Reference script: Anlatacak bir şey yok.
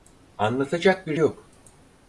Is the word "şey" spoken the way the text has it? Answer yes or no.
no